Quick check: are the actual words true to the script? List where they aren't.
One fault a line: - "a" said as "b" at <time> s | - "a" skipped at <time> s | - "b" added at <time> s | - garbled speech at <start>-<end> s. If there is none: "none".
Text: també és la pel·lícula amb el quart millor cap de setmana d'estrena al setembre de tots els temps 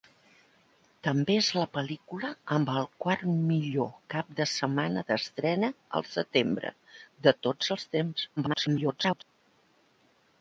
- garbled speech at 8.4-9.2 s